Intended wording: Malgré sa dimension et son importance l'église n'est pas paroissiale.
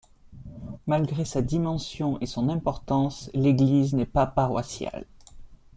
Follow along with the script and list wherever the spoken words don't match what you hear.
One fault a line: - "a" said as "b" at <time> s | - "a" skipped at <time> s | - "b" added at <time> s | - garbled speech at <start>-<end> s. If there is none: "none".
none